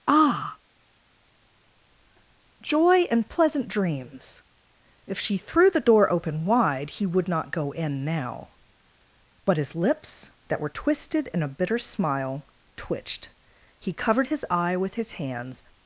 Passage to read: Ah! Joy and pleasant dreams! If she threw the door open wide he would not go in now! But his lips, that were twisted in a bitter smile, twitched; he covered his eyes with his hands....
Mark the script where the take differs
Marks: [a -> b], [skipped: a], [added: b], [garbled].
Ah! Joy and pleasant dreams! If she threw the door open wide he would not go in now! But his lips, that were twisted in a bitter smile, twitched; he covered his [eyes -> eye] with his hands....